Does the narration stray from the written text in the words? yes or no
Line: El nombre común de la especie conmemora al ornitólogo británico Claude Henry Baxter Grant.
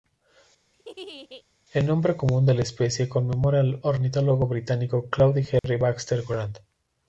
no